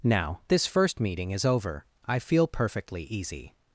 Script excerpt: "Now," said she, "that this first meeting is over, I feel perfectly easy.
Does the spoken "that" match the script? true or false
false